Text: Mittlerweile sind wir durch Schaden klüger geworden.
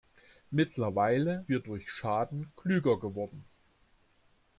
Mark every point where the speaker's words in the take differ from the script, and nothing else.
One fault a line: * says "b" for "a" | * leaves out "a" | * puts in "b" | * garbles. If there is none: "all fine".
* leaves out "sind"